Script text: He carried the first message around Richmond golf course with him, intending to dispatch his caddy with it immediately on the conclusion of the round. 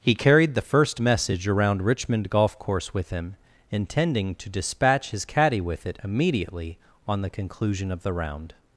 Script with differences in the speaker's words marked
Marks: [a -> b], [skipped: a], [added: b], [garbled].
He carried the first message around Richmond golf course with him, intending to dispatch his caddy with it immediately on the conclusion of the round.